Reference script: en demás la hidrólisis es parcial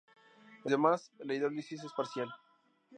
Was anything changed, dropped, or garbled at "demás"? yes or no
no